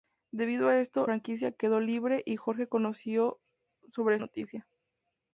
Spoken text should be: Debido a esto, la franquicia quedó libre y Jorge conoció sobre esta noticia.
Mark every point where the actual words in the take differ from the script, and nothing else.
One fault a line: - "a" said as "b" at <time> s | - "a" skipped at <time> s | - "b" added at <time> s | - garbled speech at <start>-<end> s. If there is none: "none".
- "la" skipped at 1.1 s
- "esta" skipped at 4.2 s